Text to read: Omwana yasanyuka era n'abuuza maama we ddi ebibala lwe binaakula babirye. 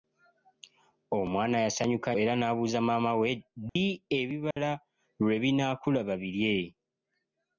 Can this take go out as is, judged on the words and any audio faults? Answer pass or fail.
fail